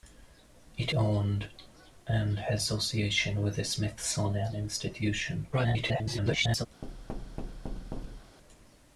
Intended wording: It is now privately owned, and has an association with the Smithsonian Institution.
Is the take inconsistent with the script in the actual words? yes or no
yes